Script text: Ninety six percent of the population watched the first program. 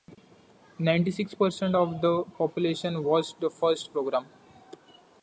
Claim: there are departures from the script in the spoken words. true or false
false